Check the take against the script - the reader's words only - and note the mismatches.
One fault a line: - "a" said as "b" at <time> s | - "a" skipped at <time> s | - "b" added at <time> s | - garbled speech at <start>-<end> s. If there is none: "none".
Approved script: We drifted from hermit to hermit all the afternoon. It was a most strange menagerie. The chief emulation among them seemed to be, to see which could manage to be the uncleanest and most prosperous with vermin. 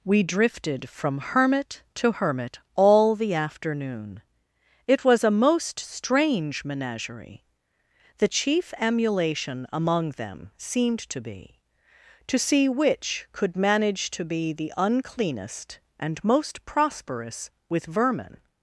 none